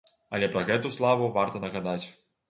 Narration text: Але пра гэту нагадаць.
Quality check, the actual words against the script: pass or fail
fail